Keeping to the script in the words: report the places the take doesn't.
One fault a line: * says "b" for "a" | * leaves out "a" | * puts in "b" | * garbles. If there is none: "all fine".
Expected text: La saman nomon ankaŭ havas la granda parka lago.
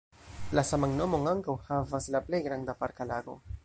* puts in "plej"